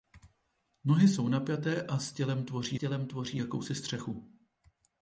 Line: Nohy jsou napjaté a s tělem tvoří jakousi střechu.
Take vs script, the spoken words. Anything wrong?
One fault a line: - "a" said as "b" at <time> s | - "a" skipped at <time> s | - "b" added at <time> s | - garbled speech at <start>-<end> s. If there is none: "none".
- "tělem tvoří" added at 2.8 s